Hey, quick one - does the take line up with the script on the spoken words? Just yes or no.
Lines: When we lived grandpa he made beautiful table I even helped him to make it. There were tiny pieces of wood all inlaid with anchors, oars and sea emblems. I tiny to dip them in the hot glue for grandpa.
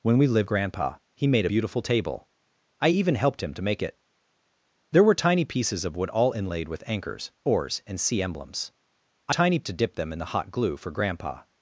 yes